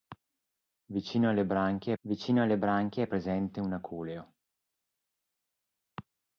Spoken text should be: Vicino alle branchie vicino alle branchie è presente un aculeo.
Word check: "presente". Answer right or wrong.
right